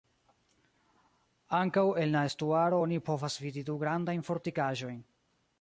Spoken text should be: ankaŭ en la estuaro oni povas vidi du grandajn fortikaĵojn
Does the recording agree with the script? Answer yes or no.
yes